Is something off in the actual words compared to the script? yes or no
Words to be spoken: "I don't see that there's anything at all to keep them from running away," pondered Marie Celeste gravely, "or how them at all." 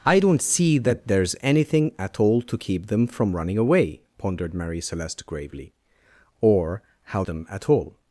no